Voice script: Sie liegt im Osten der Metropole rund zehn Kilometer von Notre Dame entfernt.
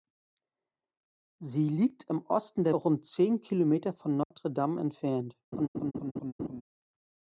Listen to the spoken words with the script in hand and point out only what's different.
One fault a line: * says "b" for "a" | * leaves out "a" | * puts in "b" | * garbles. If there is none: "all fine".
* leaves out "Metropole"